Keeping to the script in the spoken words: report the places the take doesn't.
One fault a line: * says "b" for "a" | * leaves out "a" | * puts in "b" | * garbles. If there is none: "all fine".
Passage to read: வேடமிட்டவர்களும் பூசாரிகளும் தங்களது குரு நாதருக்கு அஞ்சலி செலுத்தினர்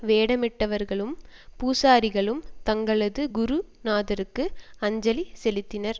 all fine